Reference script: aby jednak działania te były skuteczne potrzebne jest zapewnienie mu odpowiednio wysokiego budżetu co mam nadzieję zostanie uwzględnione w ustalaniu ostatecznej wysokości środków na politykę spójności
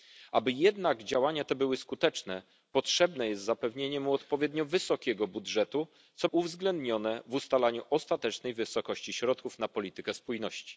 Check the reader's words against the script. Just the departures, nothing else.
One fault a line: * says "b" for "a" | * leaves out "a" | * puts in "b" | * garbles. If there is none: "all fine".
* leaves out "mam nadzieję zostanie"